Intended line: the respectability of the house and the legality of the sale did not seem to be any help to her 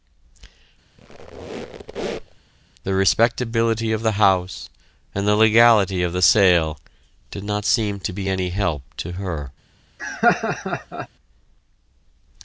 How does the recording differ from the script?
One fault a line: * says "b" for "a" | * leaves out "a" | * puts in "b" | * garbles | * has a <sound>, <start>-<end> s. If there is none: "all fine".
* has a squeak, 1.0-2.4 s
* has a laugh, 10.0-11.1 s